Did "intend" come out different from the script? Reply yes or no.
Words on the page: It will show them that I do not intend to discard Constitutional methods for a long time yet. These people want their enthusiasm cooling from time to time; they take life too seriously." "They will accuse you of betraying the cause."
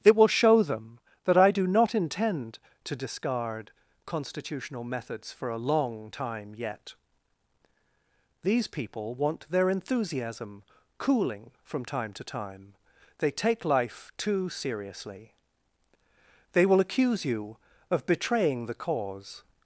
no